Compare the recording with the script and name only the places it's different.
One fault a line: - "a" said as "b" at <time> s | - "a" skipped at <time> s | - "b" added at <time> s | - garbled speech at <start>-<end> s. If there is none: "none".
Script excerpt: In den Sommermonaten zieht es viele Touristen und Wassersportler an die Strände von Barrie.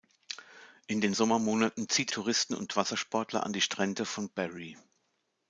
- "es viele" skipped at 2.1 s